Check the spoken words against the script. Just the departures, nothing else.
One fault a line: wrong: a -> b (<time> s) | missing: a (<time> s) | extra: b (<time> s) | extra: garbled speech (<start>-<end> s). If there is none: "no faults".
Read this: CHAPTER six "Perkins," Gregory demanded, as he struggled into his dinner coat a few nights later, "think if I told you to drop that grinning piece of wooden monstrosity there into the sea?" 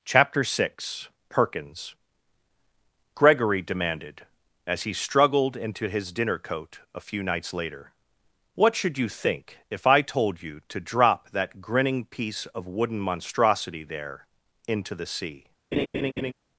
extra: what should you (8.5 s)